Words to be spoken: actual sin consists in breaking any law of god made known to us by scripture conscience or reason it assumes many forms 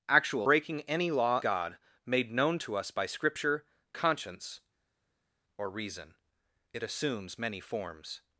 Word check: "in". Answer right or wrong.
wrong